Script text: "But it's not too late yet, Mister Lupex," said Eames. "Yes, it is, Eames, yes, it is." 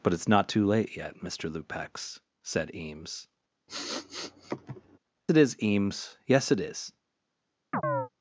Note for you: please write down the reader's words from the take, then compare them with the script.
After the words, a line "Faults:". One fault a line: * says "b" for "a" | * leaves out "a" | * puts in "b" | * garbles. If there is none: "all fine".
"But it's not too late yet, Mister Lupex," said Eames. "It is, Eames, yes, it is."
Faults:
* leaves out "Yes"